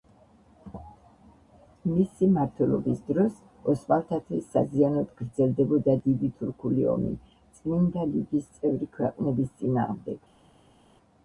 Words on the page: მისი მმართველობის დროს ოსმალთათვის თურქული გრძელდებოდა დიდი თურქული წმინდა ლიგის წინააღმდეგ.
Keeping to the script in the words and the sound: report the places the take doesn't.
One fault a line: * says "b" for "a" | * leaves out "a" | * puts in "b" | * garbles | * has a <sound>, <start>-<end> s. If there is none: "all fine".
* says "საზიანოდ" for "თურქული"
* puts in "ომი"
* puts in "წევრი ქვეყნების"